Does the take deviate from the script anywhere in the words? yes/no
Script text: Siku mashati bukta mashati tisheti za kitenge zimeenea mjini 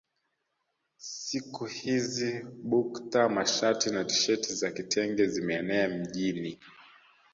yes